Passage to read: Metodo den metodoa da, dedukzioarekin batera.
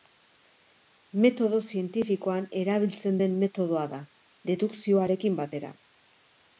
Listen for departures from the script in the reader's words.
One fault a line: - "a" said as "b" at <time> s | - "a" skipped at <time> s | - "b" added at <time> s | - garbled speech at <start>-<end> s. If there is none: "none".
- "zientifikoan erabiltzen" added at 1.7 s